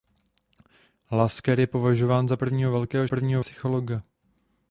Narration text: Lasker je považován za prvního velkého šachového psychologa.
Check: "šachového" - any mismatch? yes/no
yes